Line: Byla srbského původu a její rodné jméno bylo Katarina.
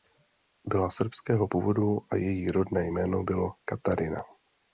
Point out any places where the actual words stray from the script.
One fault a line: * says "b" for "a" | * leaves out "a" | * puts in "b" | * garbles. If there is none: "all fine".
all fine